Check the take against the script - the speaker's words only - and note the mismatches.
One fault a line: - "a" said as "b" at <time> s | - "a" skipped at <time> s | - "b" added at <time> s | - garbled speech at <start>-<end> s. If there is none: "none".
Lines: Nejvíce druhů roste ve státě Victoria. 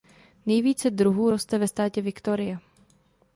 none